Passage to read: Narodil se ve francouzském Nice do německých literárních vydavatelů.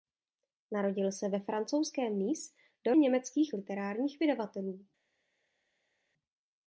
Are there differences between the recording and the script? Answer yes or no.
no